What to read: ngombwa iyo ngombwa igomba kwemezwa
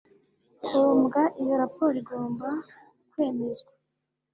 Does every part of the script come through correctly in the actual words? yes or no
no